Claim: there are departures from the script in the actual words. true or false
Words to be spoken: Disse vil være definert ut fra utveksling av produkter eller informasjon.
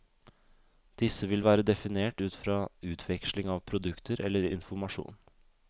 false